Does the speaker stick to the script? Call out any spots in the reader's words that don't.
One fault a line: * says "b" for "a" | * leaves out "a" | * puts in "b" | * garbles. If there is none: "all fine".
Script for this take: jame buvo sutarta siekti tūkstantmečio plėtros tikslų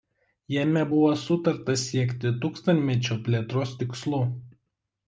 all fine